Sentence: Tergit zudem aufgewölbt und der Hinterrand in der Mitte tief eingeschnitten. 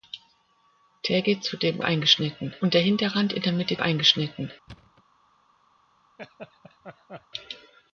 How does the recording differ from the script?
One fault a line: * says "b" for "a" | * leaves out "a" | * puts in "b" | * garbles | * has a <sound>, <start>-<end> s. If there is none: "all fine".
* says "eingeschnitten" for "aufgewölbt"
* leaves out "tief"
* has a thud, 4.7-5.0 s
* has a laugh, 6.2-7.3 s